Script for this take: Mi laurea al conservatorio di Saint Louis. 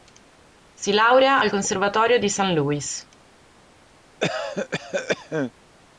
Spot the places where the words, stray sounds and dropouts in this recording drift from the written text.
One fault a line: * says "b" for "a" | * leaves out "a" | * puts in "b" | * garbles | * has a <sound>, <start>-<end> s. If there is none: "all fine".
* says "Si" for "Mi"
* has a cough, 4.2-5.5 s